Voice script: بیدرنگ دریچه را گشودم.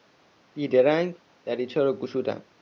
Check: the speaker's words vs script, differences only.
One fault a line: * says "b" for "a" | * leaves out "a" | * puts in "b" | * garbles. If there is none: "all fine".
all fine